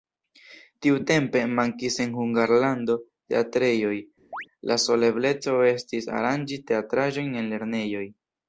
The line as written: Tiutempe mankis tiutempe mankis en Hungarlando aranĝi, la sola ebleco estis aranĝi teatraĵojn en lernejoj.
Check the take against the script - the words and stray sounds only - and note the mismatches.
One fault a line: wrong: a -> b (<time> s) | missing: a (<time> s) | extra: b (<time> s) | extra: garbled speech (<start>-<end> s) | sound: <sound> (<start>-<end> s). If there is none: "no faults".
missing: tiutempe mankis (2.0 s)
wrong: aranĝi -> teatrejoj (3.3 s)
sound: chirp (4.3-4.5 s)